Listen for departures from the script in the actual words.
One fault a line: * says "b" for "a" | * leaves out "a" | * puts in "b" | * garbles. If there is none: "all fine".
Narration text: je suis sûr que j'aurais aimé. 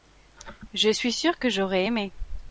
all fine